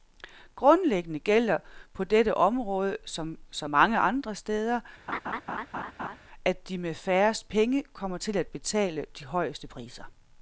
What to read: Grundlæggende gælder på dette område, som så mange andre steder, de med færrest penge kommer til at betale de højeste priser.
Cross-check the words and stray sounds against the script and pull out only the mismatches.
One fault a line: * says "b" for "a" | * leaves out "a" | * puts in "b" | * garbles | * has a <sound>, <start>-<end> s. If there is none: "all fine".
* has a laugh, 5.1-6.2 s
* puts in "at"